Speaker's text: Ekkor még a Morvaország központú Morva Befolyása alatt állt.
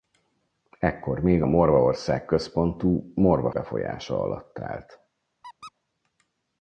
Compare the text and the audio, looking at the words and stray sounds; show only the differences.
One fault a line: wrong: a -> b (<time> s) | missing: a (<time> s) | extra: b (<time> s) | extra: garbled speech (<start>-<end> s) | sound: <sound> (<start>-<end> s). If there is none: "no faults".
sound: squeak (5.4-5.7 s)